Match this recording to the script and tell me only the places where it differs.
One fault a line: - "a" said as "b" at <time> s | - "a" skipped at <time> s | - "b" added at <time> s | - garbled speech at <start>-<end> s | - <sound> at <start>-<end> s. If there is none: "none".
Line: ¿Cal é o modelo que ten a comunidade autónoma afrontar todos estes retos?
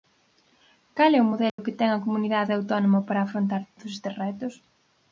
- dropout at 1.5-1.6 s
- "para" added at 3.1 s